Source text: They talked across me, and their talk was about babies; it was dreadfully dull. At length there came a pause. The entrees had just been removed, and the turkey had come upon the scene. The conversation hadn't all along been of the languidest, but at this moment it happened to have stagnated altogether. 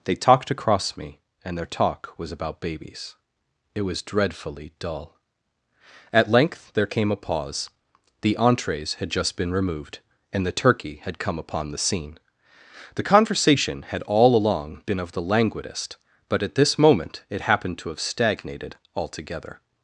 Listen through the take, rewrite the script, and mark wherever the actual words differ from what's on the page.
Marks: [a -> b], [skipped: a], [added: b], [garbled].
They talked across me, and their talk was about babies; it was dreadfully dull. At length there came a pause. The entrees had just been removed, and the turkey had come upon the scene. The conversation [hadn't -> had] all along been of the languidest, but at this moment it happened to have stagnated altogether.